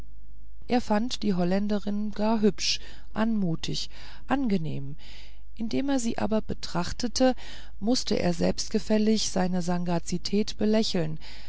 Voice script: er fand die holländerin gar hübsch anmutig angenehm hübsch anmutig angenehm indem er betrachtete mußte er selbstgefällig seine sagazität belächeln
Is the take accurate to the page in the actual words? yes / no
no